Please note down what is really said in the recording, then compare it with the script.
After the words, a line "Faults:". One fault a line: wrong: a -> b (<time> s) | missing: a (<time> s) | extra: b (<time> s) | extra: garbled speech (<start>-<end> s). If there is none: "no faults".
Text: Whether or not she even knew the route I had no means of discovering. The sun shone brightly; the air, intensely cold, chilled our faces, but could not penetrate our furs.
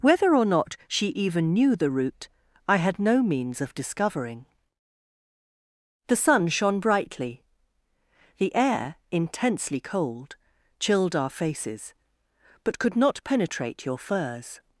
Whether or not she even knew the route I had no means of discovering. The sun shone brightly; the air, intensely cold, chilled our faces, but could not penetrate your furs.
Faults:
wrong: our -> your (13.8 s)